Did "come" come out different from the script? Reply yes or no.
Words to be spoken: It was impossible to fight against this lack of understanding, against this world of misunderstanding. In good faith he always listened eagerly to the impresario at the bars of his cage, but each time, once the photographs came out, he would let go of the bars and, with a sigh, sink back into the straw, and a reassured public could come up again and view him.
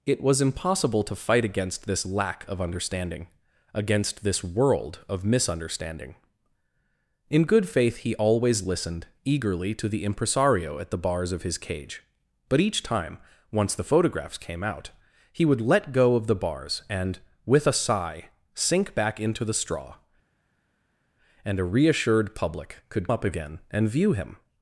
yes